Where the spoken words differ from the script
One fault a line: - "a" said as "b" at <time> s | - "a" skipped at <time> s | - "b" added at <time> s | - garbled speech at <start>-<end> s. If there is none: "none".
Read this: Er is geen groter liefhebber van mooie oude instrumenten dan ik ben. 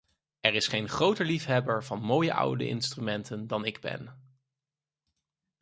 none